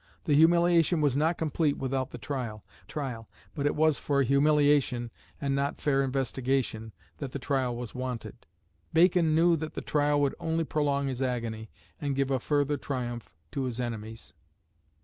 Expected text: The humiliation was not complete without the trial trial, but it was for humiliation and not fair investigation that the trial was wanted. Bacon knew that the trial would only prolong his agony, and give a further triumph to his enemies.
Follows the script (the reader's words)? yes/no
yes